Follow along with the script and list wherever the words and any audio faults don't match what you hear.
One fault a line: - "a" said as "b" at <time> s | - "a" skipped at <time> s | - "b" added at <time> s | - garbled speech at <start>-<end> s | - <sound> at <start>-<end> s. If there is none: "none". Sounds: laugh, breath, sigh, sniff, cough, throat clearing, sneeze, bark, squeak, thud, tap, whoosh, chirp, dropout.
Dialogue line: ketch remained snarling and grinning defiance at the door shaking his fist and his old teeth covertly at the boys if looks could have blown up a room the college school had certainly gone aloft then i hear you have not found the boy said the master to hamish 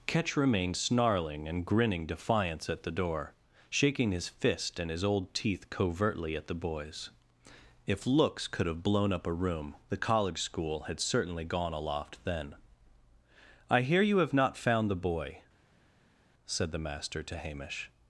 none